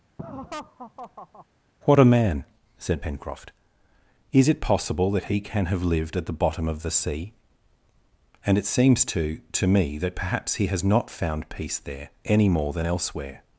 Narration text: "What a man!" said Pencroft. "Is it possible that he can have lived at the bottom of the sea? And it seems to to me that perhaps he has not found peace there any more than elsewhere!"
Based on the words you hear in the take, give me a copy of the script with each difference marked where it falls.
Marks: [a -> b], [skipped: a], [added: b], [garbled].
"What a man!" said Pencroft. "Is it possible that he can have lived at the bottom of the sea? And it seems to to me that perhaps he has not found peace there any more than elsewhere!"